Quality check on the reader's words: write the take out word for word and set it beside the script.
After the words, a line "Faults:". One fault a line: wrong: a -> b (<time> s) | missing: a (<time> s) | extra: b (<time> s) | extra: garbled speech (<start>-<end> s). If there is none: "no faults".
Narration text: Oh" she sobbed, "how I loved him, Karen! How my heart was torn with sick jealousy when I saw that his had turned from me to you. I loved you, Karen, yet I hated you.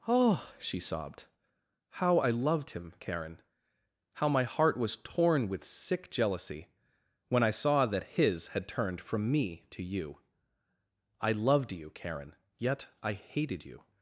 Oh" she sobbed, "how I loved him, Karen! How my heart was torn with sick jealousy when I saw that his had turned from me to you. I loved you, Karen, yet I hated you.
Faults:
no faults